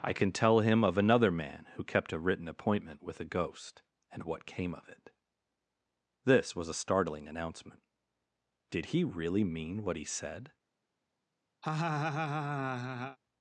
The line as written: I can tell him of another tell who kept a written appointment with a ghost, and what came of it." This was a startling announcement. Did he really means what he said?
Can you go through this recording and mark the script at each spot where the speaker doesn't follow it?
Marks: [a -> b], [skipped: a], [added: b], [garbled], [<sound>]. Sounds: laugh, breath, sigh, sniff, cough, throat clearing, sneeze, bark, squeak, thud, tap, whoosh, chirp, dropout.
I can tell him of another [tell -> man] who kept a written appointment with a ghost, and what came of it." This was a startling announcement. Did he really [means -> mean] what he said? [laugh]